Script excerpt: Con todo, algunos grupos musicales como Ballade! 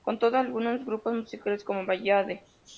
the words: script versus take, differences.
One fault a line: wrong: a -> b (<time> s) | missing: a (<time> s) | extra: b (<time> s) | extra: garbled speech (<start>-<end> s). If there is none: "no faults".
no faults